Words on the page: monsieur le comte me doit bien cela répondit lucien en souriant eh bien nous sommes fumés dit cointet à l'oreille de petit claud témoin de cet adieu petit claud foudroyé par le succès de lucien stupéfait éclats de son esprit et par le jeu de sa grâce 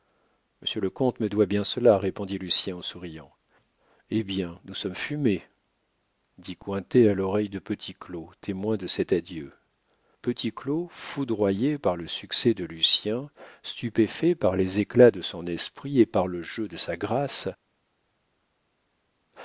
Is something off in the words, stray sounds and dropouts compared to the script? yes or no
yes